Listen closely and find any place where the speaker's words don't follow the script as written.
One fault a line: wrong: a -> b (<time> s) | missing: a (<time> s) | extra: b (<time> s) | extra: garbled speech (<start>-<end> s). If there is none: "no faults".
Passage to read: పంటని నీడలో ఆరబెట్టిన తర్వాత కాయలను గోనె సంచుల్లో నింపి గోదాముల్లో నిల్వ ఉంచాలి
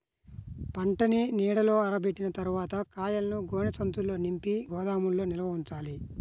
no faults